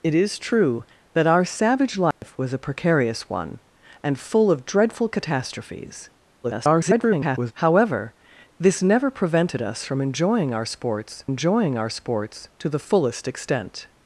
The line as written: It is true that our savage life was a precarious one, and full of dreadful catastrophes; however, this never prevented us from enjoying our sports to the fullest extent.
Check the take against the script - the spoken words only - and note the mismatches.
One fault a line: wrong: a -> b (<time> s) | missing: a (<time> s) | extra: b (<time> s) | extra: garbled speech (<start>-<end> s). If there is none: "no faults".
extra: garbled speech (6.4-7.5 s)
extra: enjoying our sports (11.3 s)